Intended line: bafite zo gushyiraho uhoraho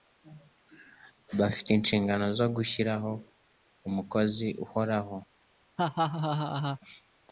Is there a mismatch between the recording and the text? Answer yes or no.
yes